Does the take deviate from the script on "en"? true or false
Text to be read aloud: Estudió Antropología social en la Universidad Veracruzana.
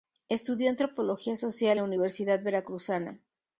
true